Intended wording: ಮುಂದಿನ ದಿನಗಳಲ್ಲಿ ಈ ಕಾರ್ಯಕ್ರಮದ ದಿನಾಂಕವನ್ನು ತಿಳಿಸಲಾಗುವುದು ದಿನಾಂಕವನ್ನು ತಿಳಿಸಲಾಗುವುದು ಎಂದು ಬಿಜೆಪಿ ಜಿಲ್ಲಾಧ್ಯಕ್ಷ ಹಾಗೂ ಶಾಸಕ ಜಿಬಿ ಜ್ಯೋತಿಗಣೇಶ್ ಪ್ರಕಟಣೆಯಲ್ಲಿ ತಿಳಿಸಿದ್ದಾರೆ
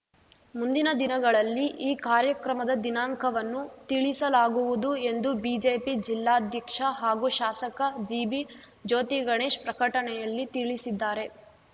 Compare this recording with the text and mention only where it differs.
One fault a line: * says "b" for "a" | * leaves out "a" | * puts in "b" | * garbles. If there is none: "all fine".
* leaves out "ದಿನಾಂಕವನ್ನು ತಿಳಿಸಲಾಗುವುದು"